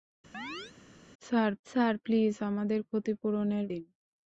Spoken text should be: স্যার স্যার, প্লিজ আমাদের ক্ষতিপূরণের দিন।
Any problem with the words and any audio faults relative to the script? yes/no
yes